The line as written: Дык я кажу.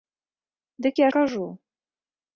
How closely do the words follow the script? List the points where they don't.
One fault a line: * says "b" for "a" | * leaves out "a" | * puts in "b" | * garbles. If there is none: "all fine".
all fine